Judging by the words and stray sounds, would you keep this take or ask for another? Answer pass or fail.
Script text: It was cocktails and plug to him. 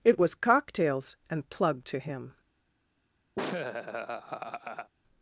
fail